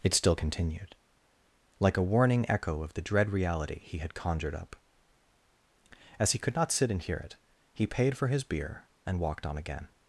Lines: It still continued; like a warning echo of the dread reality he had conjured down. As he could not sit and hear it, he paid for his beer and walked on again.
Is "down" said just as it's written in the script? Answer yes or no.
no